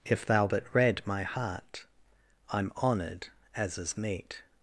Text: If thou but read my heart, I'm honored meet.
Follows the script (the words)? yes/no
no